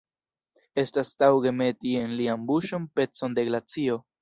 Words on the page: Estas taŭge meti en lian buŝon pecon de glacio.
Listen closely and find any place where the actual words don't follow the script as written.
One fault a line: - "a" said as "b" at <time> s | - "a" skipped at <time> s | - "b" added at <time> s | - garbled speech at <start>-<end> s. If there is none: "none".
none